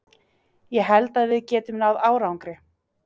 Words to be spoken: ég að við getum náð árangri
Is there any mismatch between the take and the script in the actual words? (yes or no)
yes